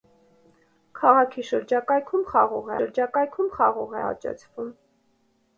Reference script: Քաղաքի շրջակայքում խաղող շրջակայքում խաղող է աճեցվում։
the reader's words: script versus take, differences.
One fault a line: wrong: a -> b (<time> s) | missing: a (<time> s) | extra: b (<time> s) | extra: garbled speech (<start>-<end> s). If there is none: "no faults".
no faults